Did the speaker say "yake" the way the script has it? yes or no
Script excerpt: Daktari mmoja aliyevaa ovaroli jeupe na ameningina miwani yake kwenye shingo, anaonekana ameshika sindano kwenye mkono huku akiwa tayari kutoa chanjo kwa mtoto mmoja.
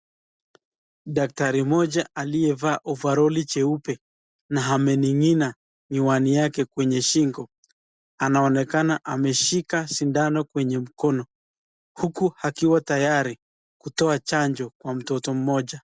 yes